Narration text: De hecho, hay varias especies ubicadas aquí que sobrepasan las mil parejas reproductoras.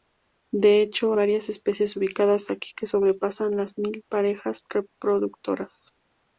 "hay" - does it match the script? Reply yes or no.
no